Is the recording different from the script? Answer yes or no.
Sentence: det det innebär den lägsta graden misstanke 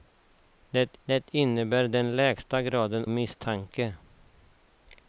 no